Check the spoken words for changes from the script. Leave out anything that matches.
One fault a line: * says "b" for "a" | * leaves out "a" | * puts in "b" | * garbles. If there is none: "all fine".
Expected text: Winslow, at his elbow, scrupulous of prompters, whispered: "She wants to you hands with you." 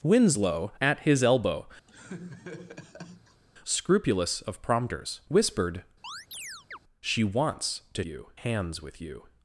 all fine